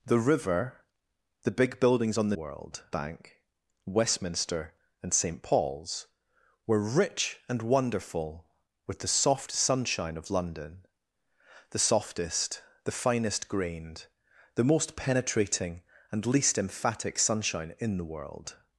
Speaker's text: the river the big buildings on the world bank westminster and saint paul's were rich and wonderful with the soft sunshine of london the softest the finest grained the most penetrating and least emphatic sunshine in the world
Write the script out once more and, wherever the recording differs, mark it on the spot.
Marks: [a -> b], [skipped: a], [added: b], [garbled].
the river the big buildings on the world bank westminster and saint paul's were rich and wonderful with the soft sunshine of london the softest the finest grained the most penetrating and least emphatic sunshine in the world